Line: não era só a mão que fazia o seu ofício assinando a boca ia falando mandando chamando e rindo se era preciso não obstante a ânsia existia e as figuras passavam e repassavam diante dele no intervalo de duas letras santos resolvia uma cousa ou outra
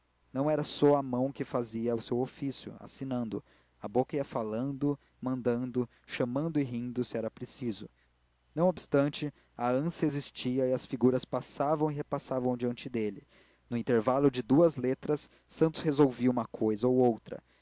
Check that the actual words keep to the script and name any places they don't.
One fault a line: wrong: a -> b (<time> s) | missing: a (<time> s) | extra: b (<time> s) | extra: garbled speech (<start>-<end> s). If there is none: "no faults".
no faults